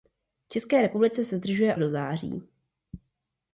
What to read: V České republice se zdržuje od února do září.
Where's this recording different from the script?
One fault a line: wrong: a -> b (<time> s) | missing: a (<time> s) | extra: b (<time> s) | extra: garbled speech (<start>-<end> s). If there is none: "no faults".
missing: od února (1.8 s)